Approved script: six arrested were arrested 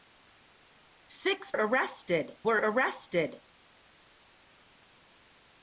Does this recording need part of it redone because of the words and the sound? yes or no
no